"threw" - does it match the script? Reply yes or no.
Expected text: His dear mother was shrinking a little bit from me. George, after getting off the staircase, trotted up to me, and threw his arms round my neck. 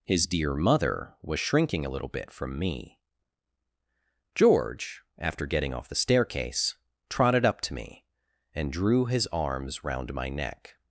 no